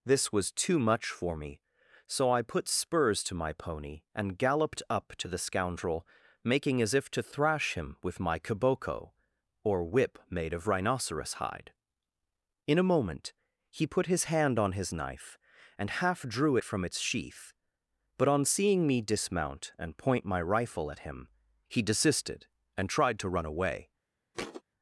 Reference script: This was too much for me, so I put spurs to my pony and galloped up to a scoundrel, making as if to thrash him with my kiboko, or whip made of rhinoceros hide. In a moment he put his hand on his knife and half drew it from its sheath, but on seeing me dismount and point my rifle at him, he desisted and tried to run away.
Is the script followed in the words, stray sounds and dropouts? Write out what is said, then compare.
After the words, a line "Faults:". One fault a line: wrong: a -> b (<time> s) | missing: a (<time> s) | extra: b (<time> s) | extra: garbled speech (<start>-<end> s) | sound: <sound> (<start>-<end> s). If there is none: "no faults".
This was too much for me, so I put spurs to my pony and galloped up to the scoundrel, making as if to thrash him with my kiboko, or whip made of rhinoceros hide. In a moment he put his hand on his knife and half drew it from its sheath, but on seeing me dismount and point my rifle at him, he desisted and tried to run away.
Faults:
wrong: a -> the (5.3 s)
sound: thud (24.3-24.6 s)